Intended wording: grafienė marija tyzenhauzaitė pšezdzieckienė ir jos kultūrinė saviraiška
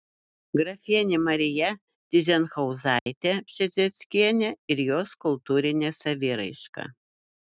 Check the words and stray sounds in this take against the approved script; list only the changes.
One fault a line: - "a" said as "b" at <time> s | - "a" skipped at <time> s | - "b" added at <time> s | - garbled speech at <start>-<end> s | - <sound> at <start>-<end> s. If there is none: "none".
- dropout at 3.0-3.1 s